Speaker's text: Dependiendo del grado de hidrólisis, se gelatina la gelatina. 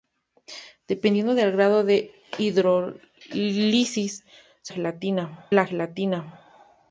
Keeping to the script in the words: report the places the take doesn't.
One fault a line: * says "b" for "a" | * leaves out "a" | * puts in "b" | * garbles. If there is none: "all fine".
all fine